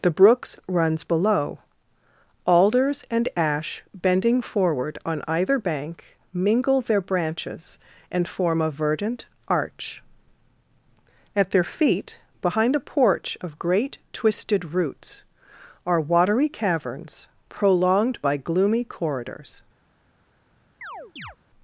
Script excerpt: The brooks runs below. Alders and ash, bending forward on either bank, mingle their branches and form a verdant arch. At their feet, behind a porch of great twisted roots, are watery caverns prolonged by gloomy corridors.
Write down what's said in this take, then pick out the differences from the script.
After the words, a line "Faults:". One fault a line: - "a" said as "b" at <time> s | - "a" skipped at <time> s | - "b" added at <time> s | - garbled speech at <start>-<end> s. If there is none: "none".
The brooks runs below. Alders and ash, bending forward on either bank, mingle their branches and form a verdant arch. At their feet, behind a porch of great twisted roots, are watery caverns prolonged by gloomy corridors.
Faults:
none